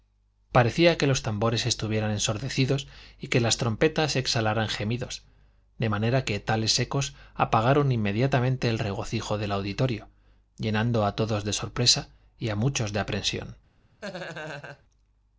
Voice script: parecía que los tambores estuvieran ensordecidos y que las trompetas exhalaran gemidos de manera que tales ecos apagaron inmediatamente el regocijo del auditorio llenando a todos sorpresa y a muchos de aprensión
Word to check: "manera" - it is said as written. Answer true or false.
true